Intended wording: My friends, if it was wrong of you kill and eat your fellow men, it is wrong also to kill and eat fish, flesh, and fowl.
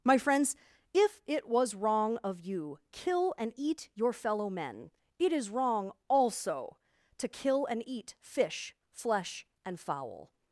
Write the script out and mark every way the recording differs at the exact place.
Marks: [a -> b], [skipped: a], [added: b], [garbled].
My friends, if it was wrong of you kill and eat your fellow men, it is wrong also to kill and eat fish, flesh, and fowl.